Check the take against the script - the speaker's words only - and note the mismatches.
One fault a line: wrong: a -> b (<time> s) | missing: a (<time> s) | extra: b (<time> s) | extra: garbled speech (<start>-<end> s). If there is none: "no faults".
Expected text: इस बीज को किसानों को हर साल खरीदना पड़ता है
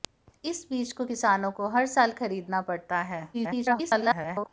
extra: garbled speech (3.3-4.5 s)